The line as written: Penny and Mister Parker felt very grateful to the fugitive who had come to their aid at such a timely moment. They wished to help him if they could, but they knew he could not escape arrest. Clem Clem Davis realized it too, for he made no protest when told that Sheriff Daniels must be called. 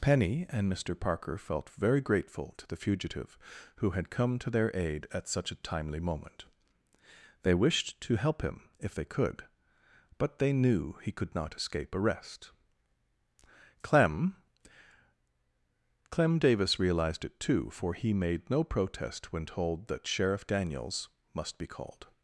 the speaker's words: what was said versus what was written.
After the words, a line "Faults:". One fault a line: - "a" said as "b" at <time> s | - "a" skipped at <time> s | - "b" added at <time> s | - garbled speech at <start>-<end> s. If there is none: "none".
Penny and Mister Parker felt very grateful to the fugitive who had come to their aid at such a timely moment. They wished to help him if they could, but they knew he could not escape arrest. Clem Clem Davis realized it too, for he made no protest when told that Sheriff Daniels must be called.
Faults:
none